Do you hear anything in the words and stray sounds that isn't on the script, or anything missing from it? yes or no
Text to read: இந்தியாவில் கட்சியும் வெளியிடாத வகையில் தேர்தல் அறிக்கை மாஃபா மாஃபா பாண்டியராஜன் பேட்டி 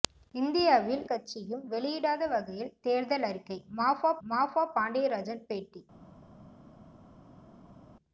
no